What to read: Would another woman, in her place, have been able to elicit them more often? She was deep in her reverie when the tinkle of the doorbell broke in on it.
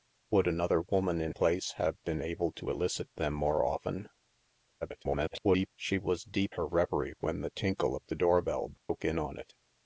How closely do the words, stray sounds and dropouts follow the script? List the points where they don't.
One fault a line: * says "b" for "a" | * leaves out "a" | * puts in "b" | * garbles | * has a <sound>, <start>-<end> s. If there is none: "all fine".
* leaves out "her"
* garbles
* leaves out "in"
* has a dropout, 8.8-8.9 s